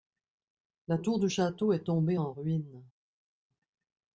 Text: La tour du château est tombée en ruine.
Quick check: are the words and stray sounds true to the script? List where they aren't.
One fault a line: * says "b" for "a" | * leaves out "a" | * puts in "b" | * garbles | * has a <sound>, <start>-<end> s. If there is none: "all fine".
all fine